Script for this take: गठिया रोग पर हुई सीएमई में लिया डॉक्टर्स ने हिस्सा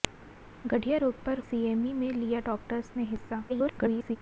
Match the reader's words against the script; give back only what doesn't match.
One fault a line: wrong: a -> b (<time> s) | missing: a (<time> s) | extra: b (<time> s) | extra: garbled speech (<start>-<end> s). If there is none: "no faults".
missing: हुई (1.4 s)
extra: garbled speech (3.5-4.2 s)